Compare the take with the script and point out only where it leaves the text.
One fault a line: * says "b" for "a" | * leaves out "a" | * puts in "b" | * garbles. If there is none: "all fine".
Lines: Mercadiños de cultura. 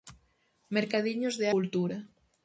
all fine